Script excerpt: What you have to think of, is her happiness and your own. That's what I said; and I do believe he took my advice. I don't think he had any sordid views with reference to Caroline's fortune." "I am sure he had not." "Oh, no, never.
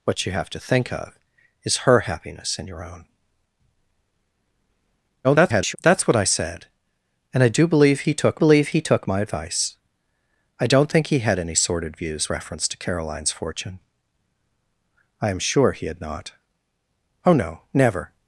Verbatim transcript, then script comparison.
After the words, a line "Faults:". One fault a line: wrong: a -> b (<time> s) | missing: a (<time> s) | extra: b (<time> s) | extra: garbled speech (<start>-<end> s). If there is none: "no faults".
What you have to think of, is her happiness and your own. [garbled] That's what I said; and I do believe he took believe he took my advice. I don't think he had any sordid views reference to Caroline's fortune." "I am sure he had not." "Oh, no, never.
Faults:
extra: garbled speech (5.2-5.8 s)
extra: believe he took (8.4 s)
missing: with (12.3 s)